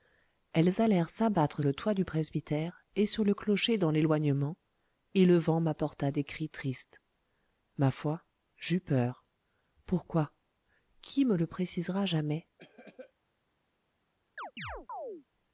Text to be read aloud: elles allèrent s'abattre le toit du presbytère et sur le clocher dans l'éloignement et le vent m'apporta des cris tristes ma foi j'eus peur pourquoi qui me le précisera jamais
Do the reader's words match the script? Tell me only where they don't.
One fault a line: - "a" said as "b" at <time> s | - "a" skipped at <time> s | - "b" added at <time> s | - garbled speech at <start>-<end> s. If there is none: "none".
none